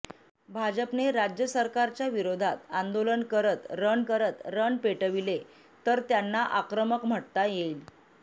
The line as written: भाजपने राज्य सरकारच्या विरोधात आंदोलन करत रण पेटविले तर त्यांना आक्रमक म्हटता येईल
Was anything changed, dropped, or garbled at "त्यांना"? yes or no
no